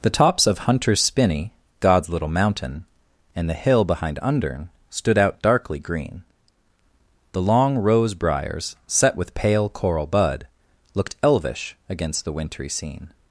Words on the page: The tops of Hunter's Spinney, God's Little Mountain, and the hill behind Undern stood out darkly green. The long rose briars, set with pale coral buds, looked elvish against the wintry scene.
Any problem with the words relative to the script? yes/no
yes